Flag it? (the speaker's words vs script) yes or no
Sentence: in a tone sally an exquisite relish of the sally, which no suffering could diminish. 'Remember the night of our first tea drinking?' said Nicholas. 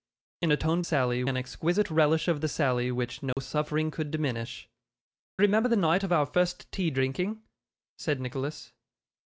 no